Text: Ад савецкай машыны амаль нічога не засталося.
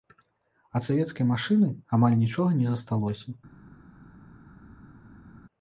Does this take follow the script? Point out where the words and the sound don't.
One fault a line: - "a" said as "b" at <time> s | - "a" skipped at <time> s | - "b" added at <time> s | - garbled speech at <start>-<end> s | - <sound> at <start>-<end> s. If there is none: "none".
none